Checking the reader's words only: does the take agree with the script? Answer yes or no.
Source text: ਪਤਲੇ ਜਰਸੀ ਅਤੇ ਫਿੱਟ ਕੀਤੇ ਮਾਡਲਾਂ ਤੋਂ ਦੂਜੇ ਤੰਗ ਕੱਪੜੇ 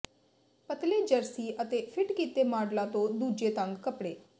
yes